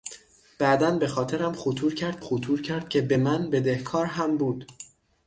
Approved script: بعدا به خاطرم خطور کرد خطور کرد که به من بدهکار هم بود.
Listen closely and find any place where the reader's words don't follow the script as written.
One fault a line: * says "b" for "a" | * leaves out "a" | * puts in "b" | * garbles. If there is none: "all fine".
all fine